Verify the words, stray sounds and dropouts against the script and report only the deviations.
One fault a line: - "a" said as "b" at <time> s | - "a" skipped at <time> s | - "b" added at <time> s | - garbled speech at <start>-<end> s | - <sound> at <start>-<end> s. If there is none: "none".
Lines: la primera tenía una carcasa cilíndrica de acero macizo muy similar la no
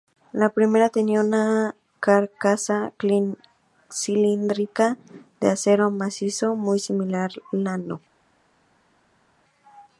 none